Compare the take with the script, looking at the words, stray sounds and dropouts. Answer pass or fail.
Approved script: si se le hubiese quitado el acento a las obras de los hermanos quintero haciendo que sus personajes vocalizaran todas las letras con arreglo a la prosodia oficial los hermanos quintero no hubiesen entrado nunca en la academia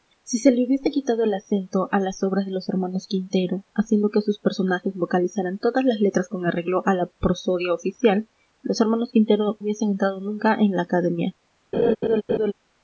fail